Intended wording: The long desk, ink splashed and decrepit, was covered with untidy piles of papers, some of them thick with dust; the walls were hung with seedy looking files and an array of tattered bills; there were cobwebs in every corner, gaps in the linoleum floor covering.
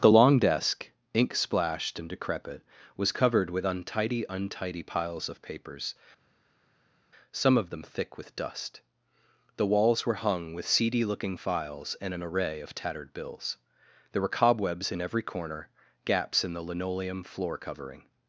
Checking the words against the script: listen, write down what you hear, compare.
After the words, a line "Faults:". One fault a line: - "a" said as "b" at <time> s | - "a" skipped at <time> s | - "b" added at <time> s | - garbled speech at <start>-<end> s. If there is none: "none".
The long desk, ink splashed and decrepit, was covered with untidy untidy piles of papers, some of them thick with dust; the walls were hung with seedy looking files and an array of tattered bills; there were cobwebs in every corner, gaps in the linoleum floor covering.
Faults:
- "untidy" added at 4.3 s